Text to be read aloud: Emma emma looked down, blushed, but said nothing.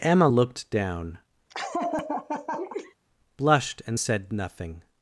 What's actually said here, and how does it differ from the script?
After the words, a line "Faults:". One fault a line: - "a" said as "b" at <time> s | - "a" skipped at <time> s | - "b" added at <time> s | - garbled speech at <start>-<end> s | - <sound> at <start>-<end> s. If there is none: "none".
Emma looked down, blushed, and said nothing.
Faults:
- "emma" skipped at 0.3 s
- laugh at 1.5-2.9 s
- "but" said as "and" at 3.9 s